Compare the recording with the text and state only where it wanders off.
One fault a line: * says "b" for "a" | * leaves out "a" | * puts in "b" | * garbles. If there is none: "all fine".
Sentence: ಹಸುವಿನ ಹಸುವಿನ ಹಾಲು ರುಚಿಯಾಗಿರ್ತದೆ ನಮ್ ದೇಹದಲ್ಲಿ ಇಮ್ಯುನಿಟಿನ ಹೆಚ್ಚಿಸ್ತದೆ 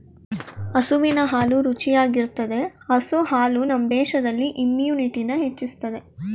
* leaves out "ಹಸುವಿನ"
* puts in "ಹಸು ಹಾಲು"